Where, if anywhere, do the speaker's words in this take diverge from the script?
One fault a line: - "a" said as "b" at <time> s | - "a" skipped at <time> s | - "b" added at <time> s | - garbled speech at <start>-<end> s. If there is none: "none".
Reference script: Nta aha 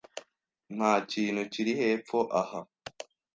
- "kintu kiri hepfo" added at 1.1 s